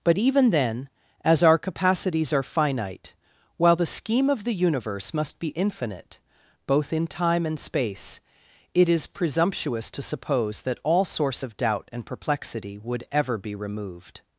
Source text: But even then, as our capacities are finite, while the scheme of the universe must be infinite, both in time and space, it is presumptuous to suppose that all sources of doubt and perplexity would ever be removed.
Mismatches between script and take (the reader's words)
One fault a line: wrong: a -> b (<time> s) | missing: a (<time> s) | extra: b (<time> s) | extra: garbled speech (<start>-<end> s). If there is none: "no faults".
wrong: sources -> source (11.1 s)